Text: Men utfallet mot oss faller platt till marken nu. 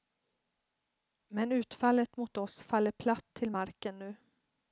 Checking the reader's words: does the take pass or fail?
pass